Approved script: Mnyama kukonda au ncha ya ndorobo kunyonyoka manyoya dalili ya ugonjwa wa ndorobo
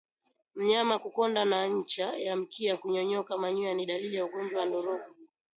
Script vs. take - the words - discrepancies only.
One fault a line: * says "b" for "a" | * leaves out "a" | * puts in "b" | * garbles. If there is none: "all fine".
* says "na" for "au"
* says "mkia" for "ndorobo"
* puts in "ni"